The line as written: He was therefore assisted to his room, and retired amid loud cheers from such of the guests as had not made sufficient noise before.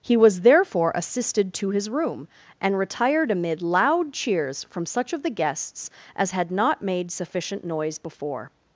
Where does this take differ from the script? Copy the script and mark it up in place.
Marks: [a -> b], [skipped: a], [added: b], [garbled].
He was therefore assisted to his room, and retired amid loud cheers from such of the guests as had not made sufficient noise before.